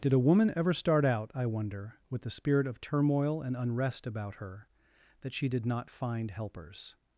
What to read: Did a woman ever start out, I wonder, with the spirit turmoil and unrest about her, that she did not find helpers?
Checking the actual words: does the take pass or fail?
fail